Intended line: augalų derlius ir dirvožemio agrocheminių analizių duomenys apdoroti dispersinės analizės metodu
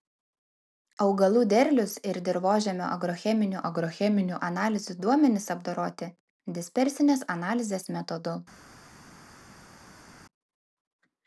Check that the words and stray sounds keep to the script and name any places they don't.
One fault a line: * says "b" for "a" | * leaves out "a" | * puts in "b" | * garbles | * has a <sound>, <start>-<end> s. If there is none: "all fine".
* puts in "agrocheminių"